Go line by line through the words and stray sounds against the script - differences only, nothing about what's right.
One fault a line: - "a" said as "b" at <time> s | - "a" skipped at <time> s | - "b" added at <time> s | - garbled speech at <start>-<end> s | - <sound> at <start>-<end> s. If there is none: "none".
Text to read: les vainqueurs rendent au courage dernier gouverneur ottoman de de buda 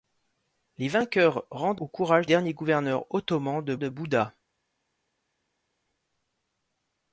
none